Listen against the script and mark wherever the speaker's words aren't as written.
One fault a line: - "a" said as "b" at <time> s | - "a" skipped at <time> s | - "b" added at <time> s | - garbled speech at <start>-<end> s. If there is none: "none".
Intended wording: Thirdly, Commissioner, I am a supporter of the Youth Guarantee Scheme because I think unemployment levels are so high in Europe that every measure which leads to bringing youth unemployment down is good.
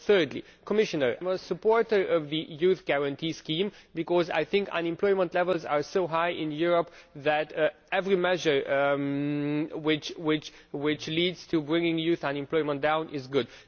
- "I" skipped at 1.2 s